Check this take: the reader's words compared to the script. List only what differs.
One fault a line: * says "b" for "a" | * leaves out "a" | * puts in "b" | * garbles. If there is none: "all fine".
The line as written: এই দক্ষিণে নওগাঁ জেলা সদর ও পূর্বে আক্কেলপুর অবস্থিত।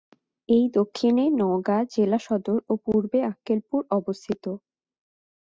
all fine